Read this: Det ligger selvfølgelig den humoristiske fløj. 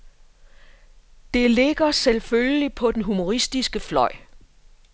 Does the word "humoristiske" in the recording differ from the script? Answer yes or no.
no